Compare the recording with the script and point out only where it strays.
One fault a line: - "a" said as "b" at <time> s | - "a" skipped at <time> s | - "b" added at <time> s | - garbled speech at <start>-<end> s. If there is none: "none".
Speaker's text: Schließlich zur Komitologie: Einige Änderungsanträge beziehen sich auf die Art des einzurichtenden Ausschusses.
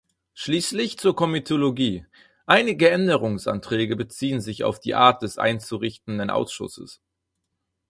none